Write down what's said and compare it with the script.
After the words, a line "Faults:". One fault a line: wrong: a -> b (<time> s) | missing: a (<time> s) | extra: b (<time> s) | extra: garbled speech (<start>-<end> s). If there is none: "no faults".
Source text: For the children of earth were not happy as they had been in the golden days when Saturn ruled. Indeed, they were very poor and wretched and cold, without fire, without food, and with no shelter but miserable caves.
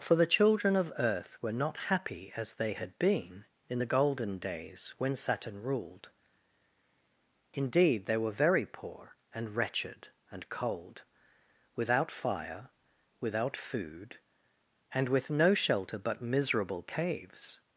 For the children of earth were not happy as they had been in the golden days when Saturn ruled. Indeed, they were very poor and wretched and cold, without fire, without food, and with no shelter but miserable caves.
Faults:
no faults